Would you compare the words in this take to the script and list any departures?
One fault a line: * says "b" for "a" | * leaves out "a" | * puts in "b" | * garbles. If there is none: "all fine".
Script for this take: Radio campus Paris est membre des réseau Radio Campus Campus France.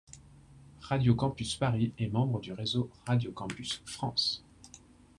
* says "du" for "des"
* leaves out "Campus"